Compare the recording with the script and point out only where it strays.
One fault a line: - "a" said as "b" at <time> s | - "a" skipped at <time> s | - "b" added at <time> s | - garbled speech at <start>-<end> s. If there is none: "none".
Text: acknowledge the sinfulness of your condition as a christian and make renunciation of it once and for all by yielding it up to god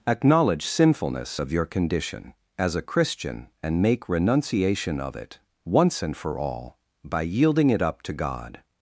- "the" skipped at 0.7 s